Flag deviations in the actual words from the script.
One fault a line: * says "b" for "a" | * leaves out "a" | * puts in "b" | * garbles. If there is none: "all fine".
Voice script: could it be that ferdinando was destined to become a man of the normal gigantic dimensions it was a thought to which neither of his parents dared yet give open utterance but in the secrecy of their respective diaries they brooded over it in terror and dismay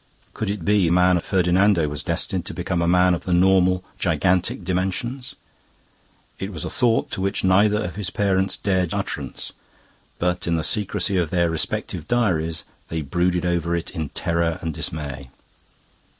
* says "man" for "that"
* leaves out "yet give open"